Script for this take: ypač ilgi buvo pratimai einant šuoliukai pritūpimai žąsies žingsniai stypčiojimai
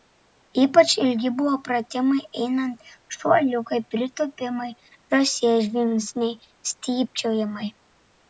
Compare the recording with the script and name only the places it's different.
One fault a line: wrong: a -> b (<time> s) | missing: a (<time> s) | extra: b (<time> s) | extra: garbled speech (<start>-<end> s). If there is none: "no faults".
no faults